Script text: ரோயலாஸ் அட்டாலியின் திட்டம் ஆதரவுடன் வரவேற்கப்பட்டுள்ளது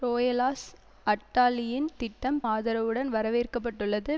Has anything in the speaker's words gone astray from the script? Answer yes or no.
no